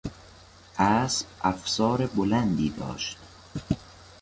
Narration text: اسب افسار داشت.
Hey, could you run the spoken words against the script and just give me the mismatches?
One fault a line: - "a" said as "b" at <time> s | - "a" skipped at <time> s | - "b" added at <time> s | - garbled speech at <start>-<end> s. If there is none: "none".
- "بلندی" added at 2.1 s